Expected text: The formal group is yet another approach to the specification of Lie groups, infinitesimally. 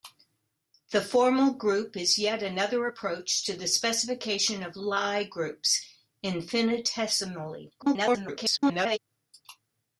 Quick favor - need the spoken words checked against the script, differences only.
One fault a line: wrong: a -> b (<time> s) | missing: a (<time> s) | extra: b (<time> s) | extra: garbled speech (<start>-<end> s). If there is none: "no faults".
extra: garbled speech (7.8-9.0 s)